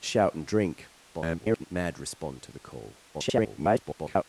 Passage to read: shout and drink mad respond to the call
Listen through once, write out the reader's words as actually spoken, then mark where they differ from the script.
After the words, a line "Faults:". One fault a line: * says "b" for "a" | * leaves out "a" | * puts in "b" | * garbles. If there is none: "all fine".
shout and drink [garbled] mad respond to the call [garbled]
Faults:
* garbles
* garbles